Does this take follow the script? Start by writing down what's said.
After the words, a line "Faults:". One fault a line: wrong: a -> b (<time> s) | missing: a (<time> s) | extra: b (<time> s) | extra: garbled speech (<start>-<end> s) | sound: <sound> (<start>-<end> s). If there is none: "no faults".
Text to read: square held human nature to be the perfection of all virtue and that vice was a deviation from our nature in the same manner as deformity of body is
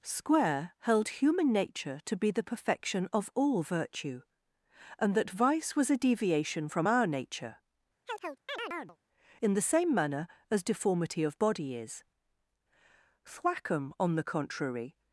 square held human nature to be the perfection of all virtue and that vice was a deviation from our nature in the same manner as deformity of body is thwackum on the contrary
Faults:
sound: chirp (8.1-9.0 s)
extra: thwackum on the contrary (13.3 s)